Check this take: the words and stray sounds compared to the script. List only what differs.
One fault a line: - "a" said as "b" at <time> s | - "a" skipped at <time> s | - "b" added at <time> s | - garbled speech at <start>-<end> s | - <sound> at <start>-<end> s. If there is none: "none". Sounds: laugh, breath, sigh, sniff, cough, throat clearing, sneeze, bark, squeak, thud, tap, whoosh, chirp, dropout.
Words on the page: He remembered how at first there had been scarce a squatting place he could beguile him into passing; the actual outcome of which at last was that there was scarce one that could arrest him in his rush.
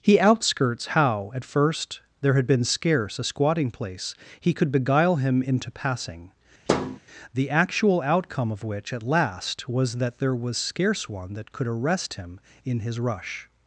- "remembered" said as "outskirts" at 0.2 s
- thud at 6.7-7.0 s